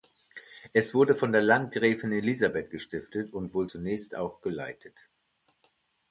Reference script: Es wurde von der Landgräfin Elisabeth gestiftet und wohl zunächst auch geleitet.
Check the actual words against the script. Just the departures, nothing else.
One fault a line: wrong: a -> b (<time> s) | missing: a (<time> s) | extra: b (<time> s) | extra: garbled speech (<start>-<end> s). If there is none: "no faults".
no faults